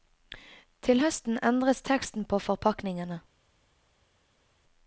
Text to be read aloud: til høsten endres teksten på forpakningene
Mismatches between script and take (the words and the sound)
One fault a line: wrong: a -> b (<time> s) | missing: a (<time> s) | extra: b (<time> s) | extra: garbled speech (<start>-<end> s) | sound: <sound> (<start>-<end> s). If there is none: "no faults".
no faults